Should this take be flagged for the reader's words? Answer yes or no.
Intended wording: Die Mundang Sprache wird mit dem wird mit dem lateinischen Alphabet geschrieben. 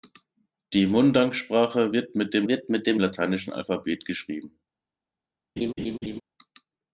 no